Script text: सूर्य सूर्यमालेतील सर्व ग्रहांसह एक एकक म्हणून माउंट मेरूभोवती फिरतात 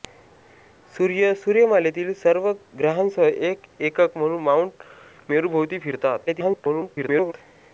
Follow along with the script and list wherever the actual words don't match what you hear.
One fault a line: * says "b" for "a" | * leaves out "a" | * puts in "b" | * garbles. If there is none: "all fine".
* garbles